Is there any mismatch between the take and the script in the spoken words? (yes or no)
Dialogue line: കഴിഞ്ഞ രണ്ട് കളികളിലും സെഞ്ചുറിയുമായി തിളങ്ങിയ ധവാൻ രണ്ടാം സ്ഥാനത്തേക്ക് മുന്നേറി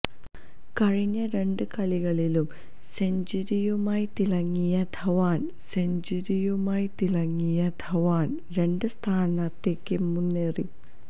yes